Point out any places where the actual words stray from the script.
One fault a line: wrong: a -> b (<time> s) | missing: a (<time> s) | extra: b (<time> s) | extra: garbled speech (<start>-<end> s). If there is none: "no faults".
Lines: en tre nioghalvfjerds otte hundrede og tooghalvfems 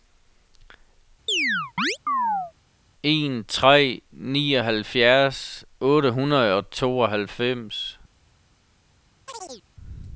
no faults